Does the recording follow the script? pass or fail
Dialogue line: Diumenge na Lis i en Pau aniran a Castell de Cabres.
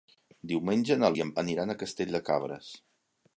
fail